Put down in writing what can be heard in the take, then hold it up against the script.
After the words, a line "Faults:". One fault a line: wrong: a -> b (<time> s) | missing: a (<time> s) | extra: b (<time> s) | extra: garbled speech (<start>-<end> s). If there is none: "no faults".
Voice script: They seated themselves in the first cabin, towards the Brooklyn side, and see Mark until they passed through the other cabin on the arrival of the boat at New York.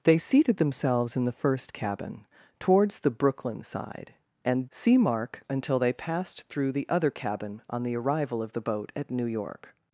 They seated themselves in the first cabin, towards the Brooklyn side, and see Mark until they passed through the other cabin on the arrival of the boat at New York.
Faults:
no faults